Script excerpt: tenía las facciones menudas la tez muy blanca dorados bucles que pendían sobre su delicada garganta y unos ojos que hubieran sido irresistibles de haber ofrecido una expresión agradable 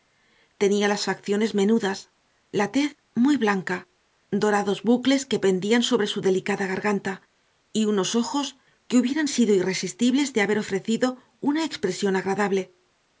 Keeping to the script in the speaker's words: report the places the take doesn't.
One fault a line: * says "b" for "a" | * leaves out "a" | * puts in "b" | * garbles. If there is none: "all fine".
all fine